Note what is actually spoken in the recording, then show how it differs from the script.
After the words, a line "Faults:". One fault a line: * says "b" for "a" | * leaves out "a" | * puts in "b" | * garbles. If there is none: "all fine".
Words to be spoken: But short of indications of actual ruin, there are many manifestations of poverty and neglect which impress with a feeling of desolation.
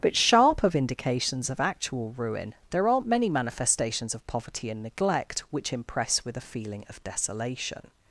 But sharp of indications of actual ruin, there aren't many manifestations of poverty and neglect which impress with a feeling of desolation.
Faults:
* says "sharp" for "short"
* says "aren't" for "are"